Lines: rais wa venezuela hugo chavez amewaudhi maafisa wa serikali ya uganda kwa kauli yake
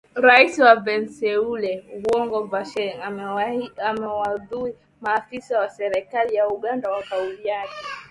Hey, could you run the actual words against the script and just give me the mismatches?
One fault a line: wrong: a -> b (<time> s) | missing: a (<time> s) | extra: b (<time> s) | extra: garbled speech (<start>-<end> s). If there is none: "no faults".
no faults